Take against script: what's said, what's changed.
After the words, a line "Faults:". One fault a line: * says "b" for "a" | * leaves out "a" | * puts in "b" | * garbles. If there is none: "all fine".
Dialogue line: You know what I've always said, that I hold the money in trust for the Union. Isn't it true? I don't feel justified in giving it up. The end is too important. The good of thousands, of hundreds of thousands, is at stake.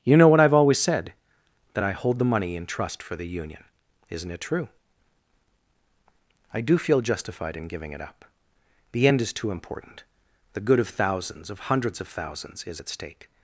You know what I've always said, that I hold the money in trust for the Union. Isn't it true? I do feel justified in giving it up. The end is too important. The good of thousands, of hundreds of thousands, is at stake.
Faults:
* says "do" for "don't"